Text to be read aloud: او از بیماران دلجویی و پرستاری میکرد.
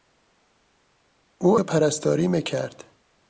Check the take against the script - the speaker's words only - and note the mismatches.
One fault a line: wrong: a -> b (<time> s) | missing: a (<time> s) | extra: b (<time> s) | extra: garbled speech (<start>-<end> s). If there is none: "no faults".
missing: از بیماران دلجویی (1.6 s)